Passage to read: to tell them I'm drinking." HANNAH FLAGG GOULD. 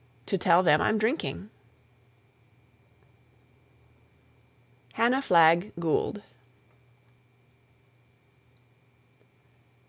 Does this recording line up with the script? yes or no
yes